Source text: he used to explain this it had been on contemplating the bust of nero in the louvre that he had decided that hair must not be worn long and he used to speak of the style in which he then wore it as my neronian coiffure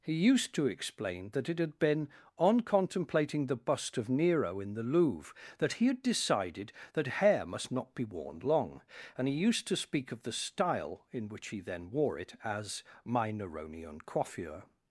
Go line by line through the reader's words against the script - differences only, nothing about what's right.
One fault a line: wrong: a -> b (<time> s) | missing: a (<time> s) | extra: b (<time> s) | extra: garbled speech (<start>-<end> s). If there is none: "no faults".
wrong: this -> that (1.3 s)